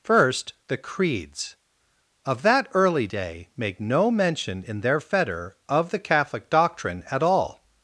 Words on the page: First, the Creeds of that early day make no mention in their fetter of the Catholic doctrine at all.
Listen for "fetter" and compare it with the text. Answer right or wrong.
right